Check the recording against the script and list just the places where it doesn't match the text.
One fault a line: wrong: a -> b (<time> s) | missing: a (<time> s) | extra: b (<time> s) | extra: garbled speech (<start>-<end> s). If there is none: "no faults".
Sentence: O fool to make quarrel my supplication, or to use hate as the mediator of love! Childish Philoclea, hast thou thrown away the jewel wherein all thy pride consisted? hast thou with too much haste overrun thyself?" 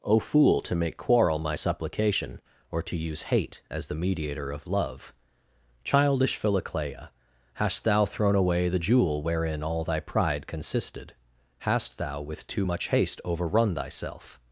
no faults